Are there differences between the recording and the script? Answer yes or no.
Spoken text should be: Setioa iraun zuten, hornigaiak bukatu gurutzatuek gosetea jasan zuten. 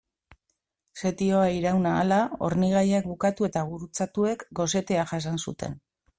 yes